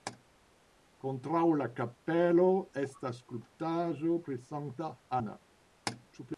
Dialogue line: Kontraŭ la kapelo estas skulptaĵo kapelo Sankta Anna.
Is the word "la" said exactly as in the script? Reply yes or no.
yes